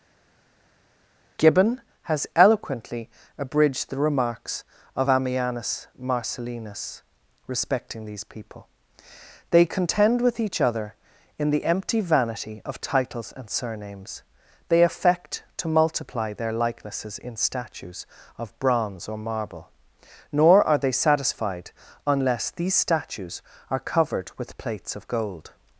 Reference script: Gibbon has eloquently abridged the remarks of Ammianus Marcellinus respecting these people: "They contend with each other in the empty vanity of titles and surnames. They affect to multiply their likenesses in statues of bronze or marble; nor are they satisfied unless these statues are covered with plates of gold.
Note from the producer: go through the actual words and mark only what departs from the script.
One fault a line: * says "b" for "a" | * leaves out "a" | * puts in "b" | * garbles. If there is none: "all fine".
all fine